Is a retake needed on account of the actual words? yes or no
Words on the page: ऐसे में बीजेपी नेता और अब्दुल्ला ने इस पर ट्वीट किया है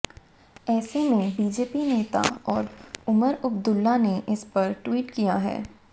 yes